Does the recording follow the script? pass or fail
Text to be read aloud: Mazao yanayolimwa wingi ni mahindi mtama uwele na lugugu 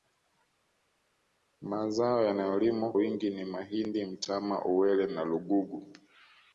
pass